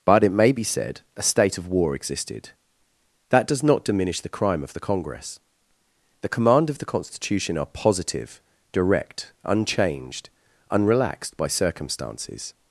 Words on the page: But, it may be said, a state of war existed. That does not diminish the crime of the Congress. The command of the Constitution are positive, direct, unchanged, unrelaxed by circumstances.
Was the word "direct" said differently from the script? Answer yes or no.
no